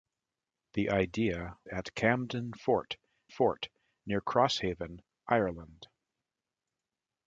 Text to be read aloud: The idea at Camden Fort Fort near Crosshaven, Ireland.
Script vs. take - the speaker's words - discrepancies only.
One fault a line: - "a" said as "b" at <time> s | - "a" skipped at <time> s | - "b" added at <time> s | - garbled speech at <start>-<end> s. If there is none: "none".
none